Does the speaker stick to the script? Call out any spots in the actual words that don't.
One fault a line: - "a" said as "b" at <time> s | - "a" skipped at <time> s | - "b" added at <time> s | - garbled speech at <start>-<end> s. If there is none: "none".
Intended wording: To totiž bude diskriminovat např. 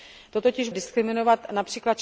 - "bude" skipped at 0.7 s